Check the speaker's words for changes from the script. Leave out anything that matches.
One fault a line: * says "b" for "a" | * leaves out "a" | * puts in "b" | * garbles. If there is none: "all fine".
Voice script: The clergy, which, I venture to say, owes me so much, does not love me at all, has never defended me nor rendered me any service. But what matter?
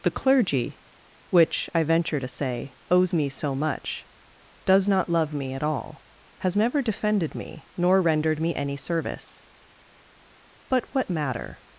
all fine